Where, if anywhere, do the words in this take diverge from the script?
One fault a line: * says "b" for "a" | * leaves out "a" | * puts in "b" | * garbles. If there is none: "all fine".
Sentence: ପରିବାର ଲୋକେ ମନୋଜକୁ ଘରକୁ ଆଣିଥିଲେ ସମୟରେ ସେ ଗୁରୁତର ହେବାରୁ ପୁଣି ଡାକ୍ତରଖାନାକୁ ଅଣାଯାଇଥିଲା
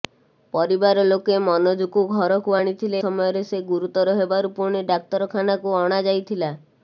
all fine